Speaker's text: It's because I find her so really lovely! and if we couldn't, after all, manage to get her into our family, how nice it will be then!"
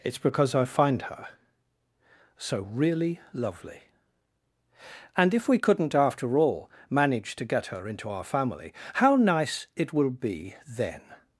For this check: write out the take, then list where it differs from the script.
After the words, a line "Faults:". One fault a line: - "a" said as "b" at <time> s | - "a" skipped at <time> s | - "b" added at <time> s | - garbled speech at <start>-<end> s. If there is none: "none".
It's because I find her so really lovely! and if we couldn't, after all, manage to get her into our family, how nice it will be then!"
Faults:
none